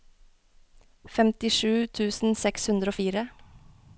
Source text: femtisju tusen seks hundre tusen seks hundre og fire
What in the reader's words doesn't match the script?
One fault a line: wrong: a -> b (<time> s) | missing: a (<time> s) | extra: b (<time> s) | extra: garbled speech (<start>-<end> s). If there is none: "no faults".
missing: tusen seks hundre (3.0 s)